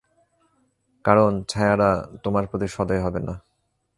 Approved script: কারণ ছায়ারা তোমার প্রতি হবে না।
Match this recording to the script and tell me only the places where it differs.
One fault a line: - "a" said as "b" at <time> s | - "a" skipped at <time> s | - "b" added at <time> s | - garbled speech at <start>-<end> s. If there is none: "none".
- "সদয়" added at 2.7 s